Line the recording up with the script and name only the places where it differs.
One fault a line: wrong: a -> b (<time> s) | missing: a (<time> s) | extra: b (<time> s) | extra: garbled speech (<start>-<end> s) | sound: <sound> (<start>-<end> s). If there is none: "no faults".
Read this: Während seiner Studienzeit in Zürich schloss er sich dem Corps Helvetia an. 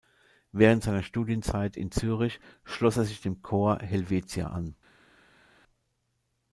no faults